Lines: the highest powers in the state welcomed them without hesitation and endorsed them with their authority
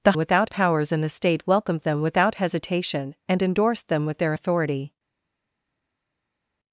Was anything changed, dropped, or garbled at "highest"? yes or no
yes